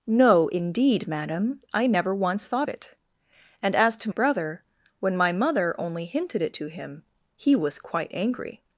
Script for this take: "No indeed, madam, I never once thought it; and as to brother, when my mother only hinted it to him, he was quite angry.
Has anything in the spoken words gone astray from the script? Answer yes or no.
no